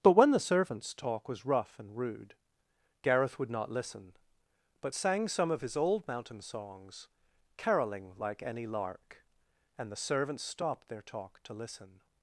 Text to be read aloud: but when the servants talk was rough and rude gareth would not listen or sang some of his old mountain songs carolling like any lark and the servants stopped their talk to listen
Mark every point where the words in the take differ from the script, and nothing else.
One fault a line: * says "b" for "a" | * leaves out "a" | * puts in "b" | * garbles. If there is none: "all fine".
* says "but" for "or"